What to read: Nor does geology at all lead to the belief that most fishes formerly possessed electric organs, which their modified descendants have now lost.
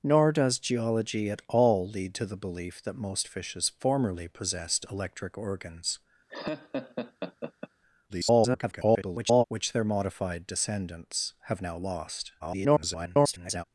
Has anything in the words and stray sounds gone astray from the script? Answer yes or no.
yes